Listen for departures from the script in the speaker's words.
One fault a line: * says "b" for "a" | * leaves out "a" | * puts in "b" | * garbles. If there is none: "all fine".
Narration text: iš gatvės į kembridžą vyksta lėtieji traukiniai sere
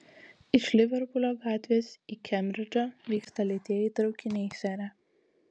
* puts in "liverpulio"